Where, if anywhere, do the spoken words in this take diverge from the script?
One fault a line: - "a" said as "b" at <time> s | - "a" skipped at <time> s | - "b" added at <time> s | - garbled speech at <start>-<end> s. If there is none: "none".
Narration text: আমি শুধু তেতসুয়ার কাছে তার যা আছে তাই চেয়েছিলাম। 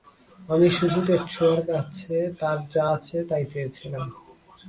none